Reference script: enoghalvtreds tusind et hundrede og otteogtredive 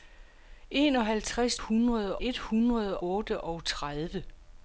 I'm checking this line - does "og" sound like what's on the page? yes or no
no